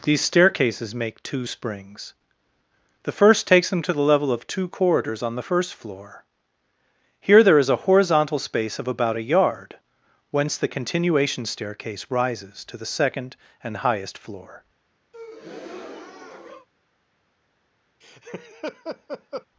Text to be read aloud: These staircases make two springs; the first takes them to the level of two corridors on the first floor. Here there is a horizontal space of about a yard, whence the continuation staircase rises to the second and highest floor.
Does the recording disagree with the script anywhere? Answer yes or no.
no